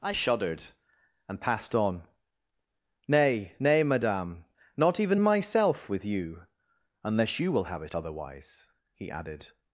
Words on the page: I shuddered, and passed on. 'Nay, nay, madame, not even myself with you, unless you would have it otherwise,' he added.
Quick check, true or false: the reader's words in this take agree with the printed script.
false